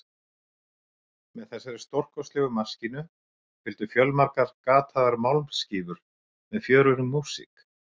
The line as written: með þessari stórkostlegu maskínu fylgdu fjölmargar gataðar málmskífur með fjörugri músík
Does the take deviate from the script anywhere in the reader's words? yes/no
no